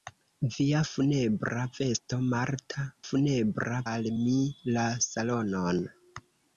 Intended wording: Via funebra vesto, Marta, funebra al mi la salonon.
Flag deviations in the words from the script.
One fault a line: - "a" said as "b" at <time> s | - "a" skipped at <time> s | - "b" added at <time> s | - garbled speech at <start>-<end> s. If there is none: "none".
none